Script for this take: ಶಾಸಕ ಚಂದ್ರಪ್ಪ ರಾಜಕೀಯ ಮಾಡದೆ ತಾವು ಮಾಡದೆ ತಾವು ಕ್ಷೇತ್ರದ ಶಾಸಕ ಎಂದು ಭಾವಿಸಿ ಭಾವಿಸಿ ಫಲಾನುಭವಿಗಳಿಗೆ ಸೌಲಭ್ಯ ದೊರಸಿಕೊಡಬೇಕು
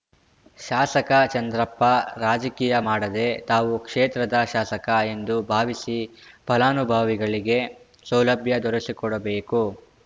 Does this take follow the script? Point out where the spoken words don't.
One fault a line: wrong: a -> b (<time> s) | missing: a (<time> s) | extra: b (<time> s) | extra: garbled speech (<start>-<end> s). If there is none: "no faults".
missing: ಮಾಡದೆ ತಾವು (3.7 s)
missing: ಭಾವಿಸಿ (6.0 s)